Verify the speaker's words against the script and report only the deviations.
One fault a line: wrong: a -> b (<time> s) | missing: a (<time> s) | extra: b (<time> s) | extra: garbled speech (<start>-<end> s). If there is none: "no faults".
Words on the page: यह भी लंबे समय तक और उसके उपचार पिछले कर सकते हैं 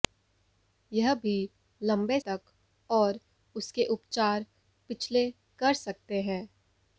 missing: समय (2.2 s)